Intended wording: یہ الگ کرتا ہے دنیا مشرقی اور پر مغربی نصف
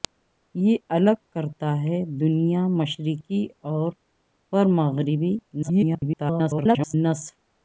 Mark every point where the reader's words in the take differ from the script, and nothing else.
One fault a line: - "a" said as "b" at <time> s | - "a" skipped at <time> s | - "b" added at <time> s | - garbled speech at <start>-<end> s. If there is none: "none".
- garbled speech at 5.6-6.9 s